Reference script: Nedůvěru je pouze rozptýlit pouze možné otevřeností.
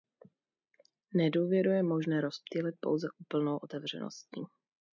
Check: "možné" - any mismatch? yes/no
yes